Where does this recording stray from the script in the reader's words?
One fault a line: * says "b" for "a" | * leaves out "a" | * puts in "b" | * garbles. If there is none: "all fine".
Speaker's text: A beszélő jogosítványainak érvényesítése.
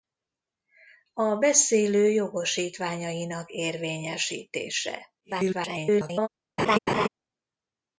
* garbles